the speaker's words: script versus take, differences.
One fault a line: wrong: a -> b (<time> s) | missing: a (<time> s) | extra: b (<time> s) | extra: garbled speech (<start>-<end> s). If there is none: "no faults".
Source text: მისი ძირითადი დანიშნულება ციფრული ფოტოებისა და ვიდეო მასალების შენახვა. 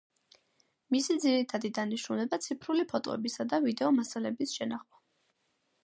no faults